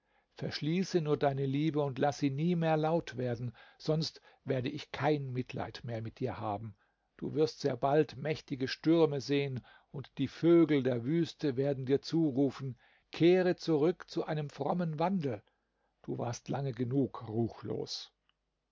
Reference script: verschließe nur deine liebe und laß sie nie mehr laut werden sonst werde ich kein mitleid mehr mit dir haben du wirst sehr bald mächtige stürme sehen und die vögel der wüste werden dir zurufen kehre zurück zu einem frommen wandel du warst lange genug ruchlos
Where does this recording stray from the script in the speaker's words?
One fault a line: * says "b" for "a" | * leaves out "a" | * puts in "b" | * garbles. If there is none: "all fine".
all fine